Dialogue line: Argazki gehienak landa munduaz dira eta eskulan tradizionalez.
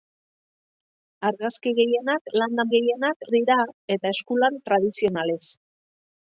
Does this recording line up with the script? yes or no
no